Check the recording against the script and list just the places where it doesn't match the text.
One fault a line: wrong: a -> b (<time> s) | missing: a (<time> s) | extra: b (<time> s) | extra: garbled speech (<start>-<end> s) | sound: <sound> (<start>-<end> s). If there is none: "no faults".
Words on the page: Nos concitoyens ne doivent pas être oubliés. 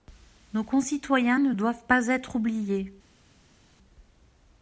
no faults